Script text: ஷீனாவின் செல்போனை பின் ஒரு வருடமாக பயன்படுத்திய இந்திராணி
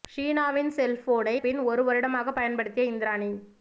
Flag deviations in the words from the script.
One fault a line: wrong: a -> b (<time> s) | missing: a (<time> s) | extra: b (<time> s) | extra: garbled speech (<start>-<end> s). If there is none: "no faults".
no faults